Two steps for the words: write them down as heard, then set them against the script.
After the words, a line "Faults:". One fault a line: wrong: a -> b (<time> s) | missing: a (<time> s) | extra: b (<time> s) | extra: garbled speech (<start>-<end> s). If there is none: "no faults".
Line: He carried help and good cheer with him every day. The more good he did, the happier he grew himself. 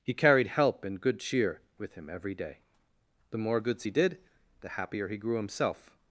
He carried help and good cheer with him every day. The more goods he did, the happier he grew himself.
Faults:
wrong: good -> goods (3.6 s)